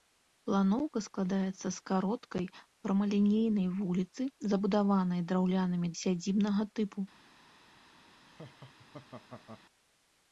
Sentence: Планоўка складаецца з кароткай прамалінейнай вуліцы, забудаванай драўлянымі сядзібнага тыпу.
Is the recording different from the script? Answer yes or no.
no